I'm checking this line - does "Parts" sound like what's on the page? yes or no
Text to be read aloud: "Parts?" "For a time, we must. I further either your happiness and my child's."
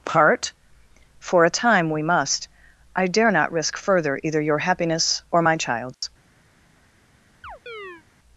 no